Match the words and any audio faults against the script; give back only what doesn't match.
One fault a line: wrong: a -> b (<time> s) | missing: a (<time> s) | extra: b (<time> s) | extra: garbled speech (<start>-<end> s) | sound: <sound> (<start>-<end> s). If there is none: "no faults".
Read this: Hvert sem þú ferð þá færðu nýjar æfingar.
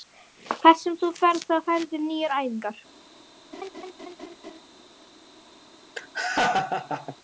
sound: laugh (3.5-4.6 s)
sound: laugh (6.0-7.2 s)